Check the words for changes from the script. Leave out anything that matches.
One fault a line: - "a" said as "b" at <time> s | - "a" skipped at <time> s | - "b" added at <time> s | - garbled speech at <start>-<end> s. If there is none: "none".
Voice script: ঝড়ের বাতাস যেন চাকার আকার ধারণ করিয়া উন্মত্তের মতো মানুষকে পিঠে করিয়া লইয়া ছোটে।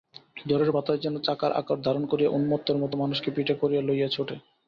none